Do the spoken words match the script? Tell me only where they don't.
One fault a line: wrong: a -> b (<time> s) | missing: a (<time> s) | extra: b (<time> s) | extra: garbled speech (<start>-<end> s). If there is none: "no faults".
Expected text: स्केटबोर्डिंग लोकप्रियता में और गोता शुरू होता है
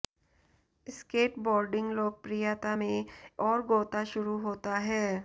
no faults